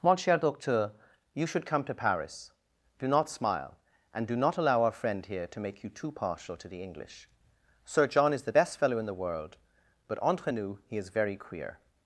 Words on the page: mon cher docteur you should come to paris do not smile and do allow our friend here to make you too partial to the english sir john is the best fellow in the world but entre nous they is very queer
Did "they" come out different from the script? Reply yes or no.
yes